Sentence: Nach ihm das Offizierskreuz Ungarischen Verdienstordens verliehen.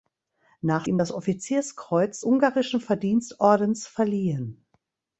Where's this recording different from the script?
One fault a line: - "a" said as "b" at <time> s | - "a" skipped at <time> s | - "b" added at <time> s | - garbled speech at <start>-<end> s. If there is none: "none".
none